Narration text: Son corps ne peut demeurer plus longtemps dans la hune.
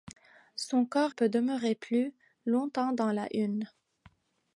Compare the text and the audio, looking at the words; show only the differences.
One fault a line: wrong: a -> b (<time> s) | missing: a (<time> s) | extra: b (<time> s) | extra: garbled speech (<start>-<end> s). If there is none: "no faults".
missing: ne (1.1 s)